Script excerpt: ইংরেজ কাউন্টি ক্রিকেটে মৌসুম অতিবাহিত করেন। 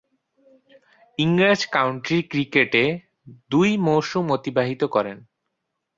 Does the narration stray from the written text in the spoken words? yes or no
yes